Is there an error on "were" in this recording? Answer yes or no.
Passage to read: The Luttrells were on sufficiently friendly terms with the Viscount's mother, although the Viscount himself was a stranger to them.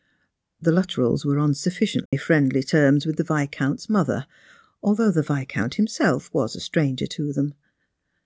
no